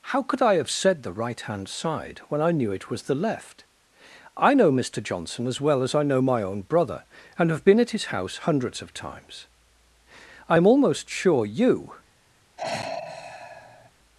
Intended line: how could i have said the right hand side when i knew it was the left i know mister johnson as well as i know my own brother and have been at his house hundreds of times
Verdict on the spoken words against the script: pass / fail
fail